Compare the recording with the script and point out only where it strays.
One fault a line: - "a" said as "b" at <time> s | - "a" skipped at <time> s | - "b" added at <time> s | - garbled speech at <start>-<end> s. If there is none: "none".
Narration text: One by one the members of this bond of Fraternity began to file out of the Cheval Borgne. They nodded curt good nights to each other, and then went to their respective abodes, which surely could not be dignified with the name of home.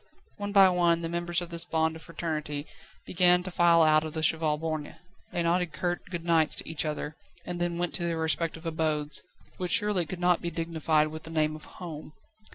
none